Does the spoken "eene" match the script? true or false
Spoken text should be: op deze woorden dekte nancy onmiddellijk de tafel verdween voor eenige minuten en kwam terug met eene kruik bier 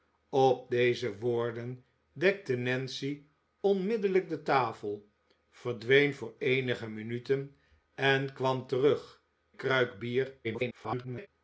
false